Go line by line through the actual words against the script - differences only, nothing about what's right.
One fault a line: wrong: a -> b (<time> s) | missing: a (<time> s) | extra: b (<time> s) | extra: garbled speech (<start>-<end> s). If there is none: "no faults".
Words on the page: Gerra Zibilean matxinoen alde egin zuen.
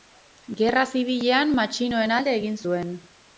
no faults